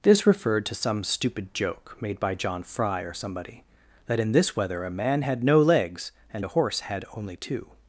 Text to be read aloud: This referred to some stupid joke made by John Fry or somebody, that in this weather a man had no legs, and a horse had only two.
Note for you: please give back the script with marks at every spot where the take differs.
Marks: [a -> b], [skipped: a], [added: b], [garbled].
This referred to some stupid joke made by John Fry or somebody, that in this weather a man had no legs, and a horse had only two.